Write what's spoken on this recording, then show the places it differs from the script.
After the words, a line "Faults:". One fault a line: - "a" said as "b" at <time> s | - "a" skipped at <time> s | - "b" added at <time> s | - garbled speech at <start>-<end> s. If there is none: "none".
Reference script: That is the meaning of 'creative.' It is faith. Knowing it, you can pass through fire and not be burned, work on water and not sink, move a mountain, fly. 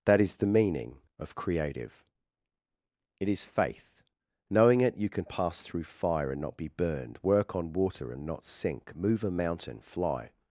That is the meaning of 'creative.' It is faith. Knowing it, you can pass through fire and not be burned, work on water and not sink, move a mountain, fly.
Faults:
none